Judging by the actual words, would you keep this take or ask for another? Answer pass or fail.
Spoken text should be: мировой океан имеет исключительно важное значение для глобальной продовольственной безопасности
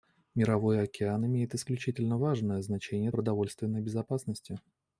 fail